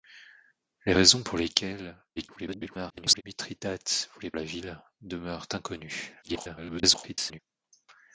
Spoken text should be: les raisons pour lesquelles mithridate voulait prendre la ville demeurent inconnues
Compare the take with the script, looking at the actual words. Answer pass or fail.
fail